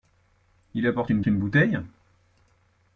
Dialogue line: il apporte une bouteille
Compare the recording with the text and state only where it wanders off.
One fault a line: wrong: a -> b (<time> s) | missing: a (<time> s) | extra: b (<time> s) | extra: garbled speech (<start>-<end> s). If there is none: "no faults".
extra: une (1.3 s)